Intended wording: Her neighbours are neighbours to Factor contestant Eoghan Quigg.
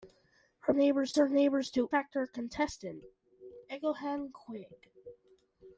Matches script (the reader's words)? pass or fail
pass